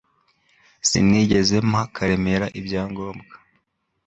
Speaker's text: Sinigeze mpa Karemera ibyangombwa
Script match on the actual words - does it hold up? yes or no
yes